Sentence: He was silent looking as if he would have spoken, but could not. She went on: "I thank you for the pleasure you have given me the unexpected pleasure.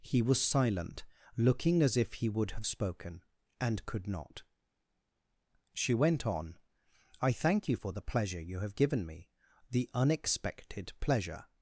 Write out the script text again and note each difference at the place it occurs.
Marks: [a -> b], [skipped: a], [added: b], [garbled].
He was silent looking as if he would have spoken, [but -> and] could not. She went on: "I thank you for the pleasure you have given me the unexpected pleasure.